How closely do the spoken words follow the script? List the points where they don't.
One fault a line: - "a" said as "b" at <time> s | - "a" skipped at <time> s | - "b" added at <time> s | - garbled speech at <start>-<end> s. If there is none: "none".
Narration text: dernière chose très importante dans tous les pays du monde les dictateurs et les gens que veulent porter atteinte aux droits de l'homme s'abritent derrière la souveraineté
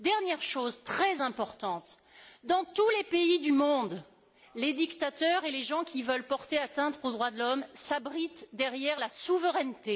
- "que" said as "qui" at 5.8 s